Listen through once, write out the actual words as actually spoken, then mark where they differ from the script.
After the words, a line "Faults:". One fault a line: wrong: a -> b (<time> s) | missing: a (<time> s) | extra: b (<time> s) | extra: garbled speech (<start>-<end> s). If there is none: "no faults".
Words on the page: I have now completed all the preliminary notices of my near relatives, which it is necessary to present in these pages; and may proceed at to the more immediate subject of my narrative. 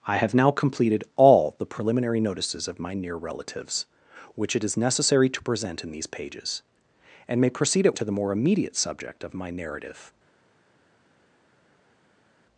I have now completed all the preliminary notices of my near relatives, which it is necessary to present in these pages; and may proceed at to the more immediate subject of my narrative.
Faults:
no faults